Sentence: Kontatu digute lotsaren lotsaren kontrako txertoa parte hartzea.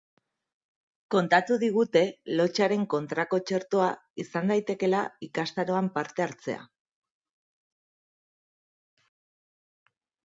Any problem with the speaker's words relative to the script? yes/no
yes